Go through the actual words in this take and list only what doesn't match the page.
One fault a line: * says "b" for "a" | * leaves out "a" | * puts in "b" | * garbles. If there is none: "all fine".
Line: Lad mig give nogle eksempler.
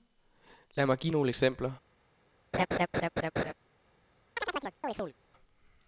all fine